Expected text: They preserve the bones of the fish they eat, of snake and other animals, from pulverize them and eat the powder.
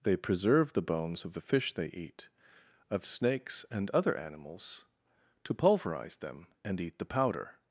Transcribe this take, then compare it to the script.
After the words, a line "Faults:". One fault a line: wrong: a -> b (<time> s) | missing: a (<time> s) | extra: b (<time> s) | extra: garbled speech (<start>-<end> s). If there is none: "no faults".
They preserve the bones of the fish they eat, of snakes and other animals, to pulverize them and eat the powder.
Faults:
wrong: snake -> snakes (3.0 s)
wrong: from -> to (5.4 s)